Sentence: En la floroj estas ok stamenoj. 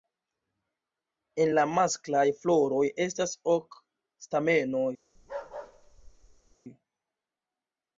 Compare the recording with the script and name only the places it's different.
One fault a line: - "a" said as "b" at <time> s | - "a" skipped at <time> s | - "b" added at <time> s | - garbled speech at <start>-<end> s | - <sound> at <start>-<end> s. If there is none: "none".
- "masklaj" added at 1.8 s
- bark at 5.2-6.6 s